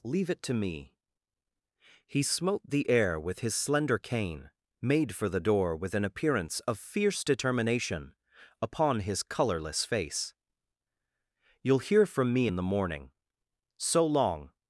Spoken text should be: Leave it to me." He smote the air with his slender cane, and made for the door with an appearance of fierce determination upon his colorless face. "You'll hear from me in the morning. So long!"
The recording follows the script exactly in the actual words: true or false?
false